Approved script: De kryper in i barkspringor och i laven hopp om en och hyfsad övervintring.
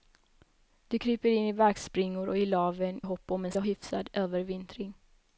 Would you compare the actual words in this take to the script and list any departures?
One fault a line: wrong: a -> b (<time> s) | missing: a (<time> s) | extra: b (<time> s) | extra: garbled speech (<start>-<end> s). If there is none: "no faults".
no faults